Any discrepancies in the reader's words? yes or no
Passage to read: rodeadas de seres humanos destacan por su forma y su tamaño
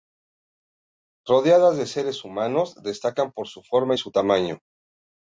no